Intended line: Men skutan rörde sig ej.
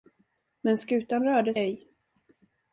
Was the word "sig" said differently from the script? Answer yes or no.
yes